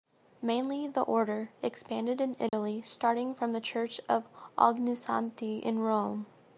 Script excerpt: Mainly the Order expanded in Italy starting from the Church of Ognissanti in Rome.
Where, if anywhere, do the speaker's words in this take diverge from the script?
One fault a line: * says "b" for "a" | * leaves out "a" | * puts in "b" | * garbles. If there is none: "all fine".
all fine